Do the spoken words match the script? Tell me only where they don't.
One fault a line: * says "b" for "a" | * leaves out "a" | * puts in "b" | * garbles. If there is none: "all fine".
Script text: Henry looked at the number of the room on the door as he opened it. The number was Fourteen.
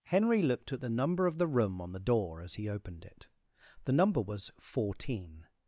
all fine